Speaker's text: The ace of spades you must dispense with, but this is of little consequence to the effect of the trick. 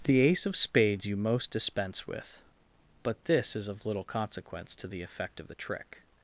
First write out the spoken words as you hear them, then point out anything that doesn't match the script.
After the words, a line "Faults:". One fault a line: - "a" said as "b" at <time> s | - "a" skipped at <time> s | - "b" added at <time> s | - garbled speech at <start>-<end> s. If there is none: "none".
The ace of spades you most dispense with, but this is of little consequence to the effect of the trick.
Faults:
- "must" said as "most" at 1.1 s